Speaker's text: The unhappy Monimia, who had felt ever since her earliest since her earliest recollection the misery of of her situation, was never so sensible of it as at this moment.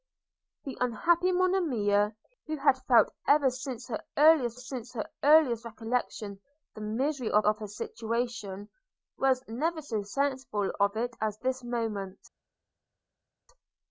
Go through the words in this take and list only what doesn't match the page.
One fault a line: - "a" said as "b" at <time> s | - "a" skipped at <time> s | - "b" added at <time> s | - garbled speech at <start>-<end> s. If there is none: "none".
none